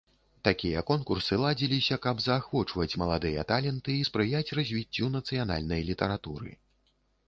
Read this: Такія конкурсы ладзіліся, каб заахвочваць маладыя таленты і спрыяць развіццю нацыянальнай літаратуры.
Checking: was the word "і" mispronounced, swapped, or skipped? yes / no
no